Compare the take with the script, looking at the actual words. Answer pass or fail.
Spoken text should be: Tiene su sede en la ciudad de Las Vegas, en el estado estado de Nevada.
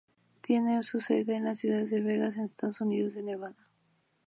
fail